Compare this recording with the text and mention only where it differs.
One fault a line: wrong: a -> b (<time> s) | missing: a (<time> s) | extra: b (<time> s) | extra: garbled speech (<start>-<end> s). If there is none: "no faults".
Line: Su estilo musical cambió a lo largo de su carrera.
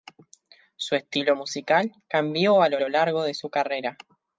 extra: lo (2.8 s)